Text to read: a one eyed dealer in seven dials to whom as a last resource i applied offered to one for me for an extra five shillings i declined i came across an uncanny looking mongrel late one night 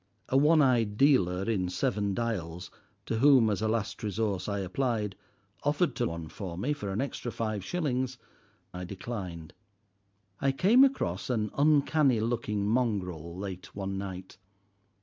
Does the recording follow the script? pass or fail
pass